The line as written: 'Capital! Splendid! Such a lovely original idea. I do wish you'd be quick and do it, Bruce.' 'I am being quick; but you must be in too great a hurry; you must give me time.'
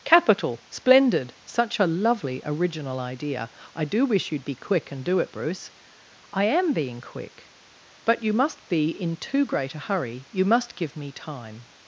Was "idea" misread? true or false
false